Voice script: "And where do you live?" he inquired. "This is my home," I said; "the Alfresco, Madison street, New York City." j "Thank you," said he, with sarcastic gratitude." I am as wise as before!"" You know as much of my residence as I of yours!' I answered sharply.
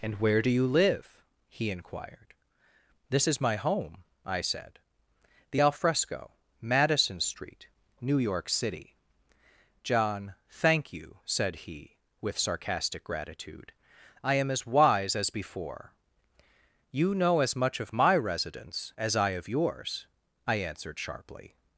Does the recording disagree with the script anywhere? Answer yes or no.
yes